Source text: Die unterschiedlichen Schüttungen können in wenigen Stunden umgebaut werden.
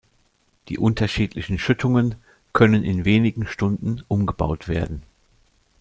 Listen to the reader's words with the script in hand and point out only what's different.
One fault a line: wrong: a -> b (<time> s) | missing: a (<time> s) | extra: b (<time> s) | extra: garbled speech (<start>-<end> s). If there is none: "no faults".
no faults